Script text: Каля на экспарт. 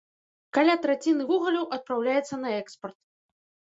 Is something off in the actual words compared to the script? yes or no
yes